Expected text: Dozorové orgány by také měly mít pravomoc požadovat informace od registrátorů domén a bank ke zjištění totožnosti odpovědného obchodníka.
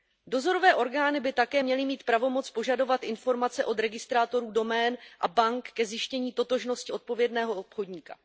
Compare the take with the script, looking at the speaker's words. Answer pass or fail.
pass